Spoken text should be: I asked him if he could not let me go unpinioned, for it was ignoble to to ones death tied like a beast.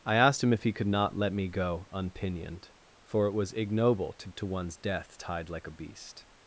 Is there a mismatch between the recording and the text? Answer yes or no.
no